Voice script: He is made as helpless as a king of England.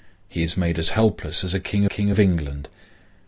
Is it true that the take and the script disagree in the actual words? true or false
true